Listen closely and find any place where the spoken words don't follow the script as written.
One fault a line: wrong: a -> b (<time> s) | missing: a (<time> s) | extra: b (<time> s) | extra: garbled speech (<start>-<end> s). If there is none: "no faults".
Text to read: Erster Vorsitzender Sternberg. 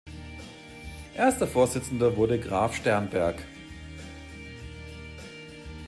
extra: wurde Graf (2.2 s)